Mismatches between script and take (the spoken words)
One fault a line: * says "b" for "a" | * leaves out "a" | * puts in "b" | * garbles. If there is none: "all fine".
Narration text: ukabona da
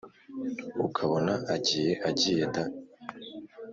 * puts in "agiye agiye"